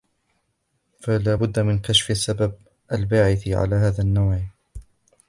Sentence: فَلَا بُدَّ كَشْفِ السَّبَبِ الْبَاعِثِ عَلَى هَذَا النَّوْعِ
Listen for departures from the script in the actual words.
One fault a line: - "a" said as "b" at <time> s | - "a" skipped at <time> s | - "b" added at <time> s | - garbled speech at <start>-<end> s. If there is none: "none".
- "مِنْ" added at 1.6 s